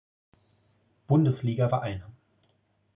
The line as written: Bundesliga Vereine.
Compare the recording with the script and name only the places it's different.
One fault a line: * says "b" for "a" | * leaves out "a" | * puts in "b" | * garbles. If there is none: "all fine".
all fine